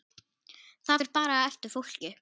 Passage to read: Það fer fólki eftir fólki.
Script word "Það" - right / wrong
right